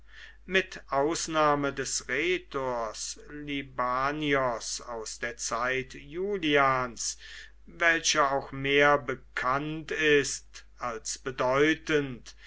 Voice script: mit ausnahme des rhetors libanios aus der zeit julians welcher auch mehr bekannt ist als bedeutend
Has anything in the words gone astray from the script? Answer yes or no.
no